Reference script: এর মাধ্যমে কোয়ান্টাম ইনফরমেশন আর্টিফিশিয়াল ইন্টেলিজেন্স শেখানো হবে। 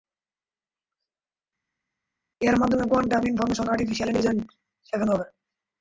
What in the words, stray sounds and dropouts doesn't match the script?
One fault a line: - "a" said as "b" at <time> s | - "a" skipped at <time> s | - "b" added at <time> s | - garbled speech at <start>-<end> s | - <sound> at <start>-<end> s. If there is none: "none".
none